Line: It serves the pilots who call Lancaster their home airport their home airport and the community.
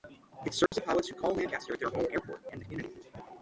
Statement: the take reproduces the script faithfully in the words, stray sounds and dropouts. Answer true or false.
false